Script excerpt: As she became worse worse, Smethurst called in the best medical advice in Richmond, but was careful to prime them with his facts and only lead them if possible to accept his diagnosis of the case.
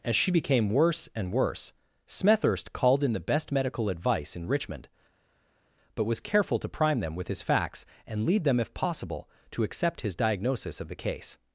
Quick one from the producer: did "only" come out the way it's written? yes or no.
no